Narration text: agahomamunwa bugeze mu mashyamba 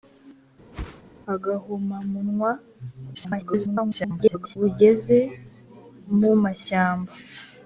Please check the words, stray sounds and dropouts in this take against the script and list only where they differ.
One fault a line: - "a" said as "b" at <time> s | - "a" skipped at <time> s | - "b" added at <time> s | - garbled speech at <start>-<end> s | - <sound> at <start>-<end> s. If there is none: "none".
- whoosh at 0.7-1.0 s
- garbled speech at 3.1-4.6 s